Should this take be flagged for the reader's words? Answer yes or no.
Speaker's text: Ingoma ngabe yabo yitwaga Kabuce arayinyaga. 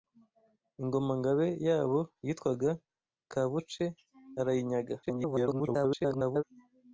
yes